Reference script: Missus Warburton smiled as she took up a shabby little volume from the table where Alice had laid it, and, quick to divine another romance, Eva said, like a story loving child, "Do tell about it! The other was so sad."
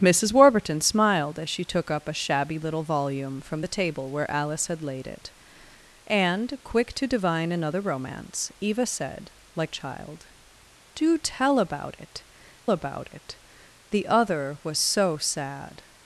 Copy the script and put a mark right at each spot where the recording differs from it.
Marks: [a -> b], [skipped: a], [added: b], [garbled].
Missus Warburton smiled as she took up a shabby little volume from the table where Alice had laid it, and, quick to divine another romance, Eva said, like [skipped: a story loving] child, "Do tell about it! [added: about it] The other was so sad."